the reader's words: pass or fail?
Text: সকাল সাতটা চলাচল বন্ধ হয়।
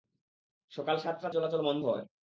pass